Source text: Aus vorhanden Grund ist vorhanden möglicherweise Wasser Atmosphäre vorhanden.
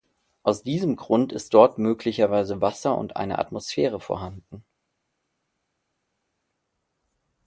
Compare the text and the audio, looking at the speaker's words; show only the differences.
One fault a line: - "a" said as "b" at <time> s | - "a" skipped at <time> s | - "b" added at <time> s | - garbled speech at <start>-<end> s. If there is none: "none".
- "vorhanden" said as "diesem" at 0.6 s
- "vorhanden" said as "dort" at 1.5 s
- "und eine" added at 3.0 s